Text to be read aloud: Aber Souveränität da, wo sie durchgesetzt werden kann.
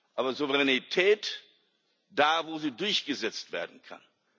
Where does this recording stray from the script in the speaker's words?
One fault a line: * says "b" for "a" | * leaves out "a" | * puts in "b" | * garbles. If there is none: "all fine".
all fine